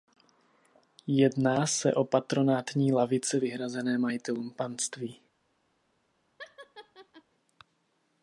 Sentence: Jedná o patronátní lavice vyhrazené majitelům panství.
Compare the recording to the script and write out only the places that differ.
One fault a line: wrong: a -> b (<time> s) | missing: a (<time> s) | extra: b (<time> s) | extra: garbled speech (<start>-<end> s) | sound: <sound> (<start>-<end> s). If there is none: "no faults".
extra: se (1.7 s)
sound: laugh (6.4-7.2 s)